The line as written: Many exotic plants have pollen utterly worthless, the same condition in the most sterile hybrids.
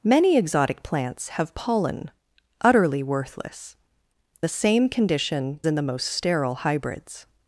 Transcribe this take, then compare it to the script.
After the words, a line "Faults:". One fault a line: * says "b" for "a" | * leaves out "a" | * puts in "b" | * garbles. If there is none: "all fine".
Many exotic plants have pollen utterly worthless, the same condition in the most sterile hybrids.
Faults:
all fine